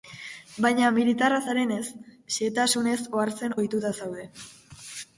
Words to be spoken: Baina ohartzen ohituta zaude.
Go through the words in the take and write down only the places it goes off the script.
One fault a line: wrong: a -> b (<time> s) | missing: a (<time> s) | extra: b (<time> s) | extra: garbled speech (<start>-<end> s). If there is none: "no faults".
extra: militarra zarenez xehetasunez (0.9 s)